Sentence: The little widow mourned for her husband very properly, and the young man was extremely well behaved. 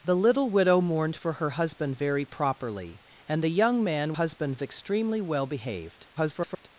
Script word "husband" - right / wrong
right